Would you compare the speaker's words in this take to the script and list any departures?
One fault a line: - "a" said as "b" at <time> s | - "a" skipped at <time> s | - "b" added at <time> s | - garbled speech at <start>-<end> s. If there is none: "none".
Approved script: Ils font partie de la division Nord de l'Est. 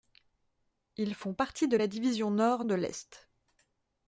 none